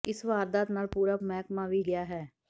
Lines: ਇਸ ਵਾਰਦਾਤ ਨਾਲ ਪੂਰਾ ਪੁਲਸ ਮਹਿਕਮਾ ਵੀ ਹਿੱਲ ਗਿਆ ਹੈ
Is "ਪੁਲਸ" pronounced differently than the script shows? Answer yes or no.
yes